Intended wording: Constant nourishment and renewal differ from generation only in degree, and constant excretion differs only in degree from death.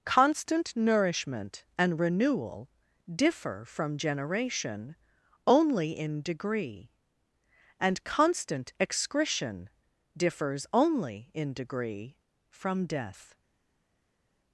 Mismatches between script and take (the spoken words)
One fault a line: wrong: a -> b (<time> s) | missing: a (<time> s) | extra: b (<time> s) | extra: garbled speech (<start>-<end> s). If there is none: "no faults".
no faults